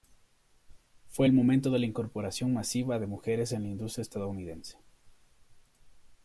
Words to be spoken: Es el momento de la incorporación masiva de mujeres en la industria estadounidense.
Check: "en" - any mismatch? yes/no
no